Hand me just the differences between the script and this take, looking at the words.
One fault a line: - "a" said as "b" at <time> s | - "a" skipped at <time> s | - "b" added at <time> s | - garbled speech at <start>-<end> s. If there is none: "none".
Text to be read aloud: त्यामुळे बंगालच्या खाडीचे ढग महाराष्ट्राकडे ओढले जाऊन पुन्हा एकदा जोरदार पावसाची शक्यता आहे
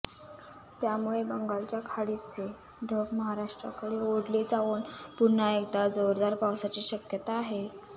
none